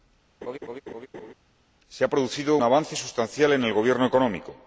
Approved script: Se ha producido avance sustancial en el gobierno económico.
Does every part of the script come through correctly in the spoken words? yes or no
yes